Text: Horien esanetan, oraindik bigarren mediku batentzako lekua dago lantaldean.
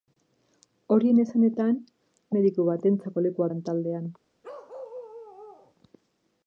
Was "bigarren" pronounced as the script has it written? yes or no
no